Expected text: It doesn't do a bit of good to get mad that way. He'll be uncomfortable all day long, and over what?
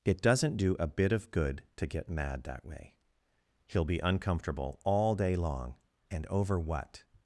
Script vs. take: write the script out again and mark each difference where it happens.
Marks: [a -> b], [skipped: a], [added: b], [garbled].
It doesn't do a bit of good to get mad that way. He'll be uncomfortable all day long, and over what?